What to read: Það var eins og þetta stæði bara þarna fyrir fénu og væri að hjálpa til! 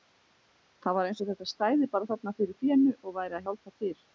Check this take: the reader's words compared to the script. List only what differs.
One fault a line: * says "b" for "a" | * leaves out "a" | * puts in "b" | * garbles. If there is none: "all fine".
all fine